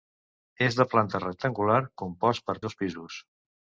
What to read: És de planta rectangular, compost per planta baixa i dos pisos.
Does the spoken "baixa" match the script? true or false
false